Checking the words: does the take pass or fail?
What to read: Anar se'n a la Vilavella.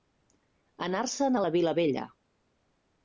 pass